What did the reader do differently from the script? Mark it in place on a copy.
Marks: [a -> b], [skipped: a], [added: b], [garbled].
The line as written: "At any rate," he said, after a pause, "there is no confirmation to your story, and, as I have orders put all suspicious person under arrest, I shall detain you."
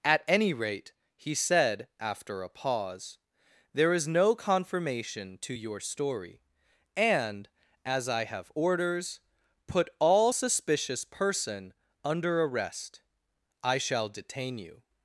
"At any rate," he said, after a pause, "there is no confirmation to your story, and, as I have orders put all suspicious person under arrest, I shall detain you."